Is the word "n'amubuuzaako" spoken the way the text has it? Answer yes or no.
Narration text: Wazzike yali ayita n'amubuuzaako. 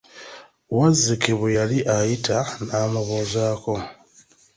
yes